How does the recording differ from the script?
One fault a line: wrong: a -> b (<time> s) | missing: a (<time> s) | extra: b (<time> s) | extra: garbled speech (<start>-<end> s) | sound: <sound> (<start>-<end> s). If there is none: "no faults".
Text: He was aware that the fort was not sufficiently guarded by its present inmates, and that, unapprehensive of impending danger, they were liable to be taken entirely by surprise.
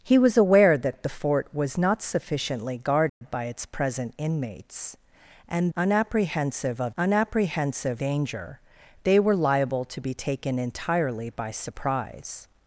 sound: dropout (3.1-3.2 s)
missing: that (5.7 s)
wrong: impending -> unapprehensive (7.0 s)